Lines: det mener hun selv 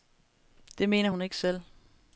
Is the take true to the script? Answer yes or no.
no